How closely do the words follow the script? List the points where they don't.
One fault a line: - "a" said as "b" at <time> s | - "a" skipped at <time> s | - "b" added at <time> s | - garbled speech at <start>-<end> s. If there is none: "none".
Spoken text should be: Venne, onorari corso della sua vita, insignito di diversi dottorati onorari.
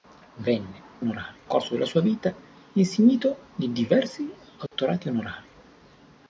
none